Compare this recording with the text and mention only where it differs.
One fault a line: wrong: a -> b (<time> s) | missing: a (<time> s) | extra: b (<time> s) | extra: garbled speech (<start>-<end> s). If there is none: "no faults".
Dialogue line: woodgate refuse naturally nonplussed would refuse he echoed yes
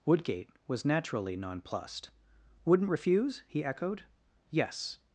wrong: refuse -> was (0.7 s)
wrong: would -> wouldn't (2.6 s)